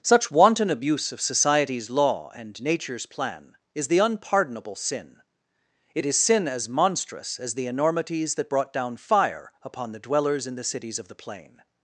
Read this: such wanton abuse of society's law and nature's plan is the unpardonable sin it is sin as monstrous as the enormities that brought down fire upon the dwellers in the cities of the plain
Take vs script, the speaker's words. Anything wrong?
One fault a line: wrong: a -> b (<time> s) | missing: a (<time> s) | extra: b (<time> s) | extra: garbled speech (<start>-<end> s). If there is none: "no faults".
no faults